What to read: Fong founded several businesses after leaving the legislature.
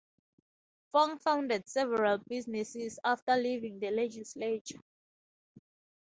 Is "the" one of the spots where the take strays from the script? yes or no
no